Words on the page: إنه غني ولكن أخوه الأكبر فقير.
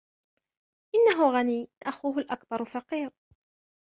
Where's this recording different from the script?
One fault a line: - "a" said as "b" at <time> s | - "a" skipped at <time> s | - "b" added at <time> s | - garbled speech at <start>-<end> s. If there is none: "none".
- "ولكن" skipped at 1.7 s